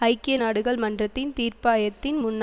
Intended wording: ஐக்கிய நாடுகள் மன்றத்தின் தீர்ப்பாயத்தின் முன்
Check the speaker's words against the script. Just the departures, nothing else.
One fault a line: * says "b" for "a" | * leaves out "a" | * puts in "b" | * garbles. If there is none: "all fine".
all fine